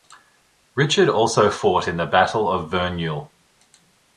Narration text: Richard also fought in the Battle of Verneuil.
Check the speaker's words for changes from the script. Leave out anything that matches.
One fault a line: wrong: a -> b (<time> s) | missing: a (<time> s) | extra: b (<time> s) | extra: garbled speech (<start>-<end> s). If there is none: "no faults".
no faults